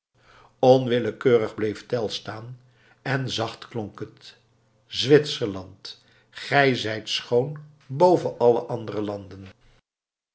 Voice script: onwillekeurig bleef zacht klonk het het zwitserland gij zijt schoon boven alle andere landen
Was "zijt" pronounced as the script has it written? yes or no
yes